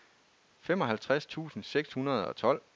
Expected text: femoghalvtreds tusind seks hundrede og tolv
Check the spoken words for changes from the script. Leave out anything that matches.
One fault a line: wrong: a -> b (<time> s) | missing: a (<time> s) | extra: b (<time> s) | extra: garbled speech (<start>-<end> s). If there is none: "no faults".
no faults